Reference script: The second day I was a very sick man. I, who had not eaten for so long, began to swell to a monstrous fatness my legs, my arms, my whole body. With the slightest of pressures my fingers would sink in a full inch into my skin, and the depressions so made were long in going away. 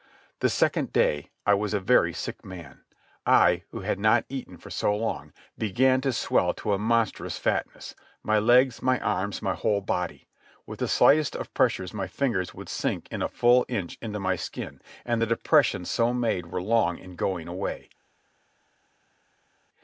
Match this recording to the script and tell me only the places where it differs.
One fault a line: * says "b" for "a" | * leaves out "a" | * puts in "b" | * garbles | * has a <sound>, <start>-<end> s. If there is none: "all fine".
all fine